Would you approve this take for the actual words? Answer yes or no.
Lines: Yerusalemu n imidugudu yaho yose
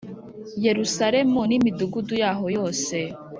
yes